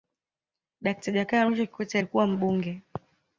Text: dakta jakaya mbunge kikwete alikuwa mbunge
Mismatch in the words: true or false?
true